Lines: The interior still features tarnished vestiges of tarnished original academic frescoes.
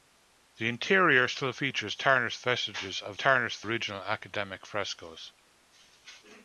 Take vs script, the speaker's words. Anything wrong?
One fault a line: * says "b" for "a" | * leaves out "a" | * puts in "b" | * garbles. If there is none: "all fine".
all fine